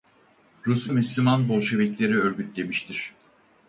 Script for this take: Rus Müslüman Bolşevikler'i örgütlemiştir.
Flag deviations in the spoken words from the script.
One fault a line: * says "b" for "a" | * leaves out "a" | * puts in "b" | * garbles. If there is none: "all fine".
all fine